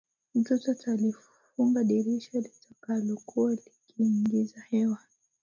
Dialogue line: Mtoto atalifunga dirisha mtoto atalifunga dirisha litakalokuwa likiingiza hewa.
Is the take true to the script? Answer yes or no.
no